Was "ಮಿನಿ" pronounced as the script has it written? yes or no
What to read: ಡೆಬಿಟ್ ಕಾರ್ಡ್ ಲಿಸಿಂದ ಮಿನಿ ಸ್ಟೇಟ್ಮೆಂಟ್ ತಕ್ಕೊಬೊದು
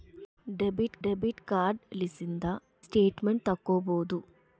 no